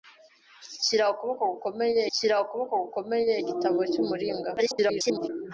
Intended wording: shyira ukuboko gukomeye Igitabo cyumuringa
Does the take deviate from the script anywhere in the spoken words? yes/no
yes